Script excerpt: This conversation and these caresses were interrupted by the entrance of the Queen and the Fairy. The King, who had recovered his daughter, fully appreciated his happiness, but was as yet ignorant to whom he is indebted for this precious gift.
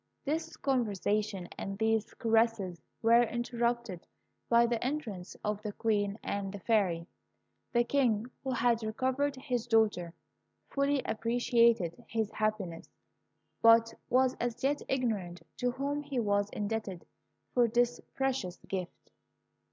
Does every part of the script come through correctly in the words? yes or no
no